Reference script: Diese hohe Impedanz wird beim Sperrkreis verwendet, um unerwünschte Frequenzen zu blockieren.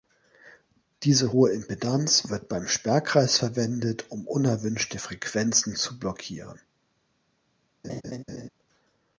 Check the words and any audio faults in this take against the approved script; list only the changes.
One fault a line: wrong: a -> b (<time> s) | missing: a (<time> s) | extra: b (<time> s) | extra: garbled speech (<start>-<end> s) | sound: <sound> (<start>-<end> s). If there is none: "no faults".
sound: laugh (7.8-8.5 s)